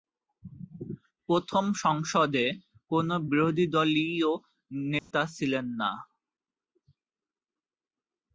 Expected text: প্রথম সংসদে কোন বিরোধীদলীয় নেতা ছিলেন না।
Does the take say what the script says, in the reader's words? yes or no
yes